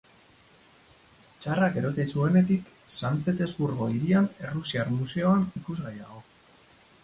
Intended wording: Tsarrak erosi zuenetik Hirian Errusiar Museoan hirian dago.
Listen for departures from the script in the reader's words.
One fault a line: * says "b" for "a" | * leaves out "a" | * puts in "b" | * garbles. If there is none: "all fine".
* puts in "San Petersburgo"
* says "ikusgai" for "hirian"